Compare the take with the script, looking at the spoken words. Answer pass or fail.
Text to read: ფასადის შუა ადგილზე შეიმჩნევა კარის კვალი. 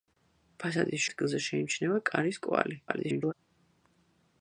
fail